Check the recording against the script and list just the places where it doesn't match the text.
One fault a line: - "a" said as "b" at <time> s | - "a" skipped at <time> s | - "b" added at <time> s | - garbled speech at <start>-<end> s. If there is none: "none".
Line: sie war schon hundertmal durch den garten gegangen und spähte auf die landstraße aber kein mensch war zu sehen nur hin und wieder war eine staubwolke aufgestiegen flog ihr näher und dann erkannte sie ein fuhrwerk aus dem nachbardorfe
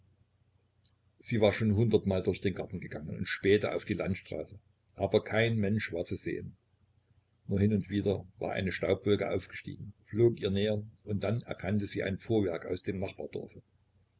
none